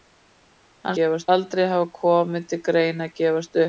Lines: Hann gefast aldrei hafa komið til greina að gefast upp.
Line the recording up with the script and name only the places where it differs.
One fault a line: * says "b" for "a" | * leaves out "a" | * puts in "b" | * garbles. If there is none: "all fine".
all fine